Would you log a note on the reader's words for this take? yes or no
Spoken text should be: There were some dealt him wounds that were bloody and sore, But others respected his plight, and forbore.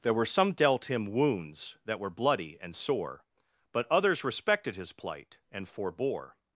no